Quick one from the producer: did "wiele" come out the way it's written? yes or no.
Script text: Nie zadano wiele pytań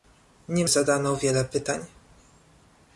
yes